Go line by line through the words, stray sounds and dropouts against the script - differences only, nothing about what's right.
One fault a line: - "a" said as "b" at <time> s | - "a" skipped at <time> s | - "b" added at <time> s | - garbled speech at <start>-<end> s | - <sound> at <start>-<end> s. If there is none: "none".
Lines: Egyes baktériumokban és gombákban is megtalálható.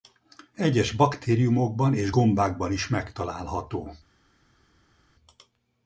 none